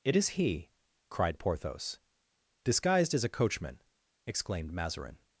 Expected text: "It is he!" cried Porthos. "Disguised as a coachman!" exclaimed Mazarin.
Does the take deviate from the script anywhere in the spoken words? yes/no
no